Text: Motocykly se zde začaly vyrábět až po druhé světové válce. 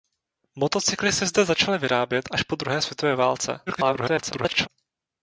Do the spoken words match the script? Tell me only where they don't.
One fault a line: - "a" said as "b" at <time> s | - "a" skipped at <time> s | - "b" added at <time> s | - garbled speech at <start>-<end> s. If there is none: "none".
- garbled speech at 3.7-4.7 s